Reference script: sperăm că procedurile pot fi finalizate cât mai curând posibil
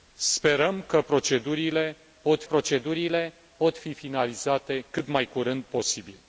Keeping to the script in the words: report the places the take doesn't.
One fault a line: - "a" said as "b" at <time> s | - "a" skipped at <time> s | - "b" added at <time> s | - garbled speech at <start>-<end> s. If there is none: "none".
- "procedurile pot" added at 2.4 s